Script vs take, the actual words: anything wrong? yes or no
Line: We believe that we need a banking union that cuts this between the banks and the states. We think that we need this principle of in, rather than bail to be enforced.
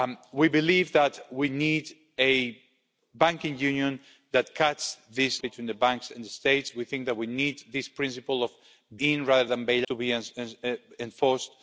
no